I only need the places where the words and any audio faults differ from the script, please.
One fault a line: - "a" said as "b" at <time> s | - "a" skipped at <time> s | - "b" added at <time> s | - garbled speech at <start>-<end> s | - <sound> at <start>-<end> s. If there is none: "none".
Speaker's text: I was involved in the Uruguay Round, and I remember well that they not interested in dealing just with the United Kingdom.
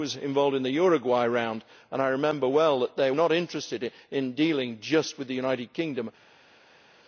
none